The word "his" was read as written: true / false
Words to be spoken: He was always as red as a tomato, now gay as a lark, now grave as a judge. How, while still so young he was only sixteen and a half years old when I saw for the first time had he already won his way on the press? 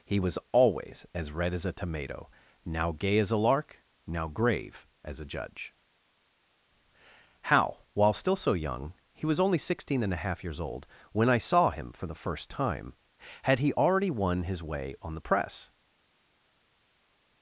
true